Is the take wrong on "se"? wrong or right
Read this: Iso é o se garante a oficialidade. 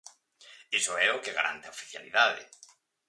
wrong